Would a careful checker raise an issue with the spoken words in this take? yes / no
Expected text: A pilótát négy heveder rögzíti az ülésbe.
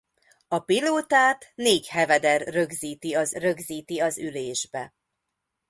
yes